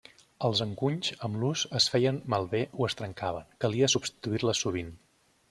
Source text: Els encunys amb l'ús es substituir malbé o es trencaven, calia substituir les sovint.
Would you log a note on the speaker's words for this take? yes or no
yes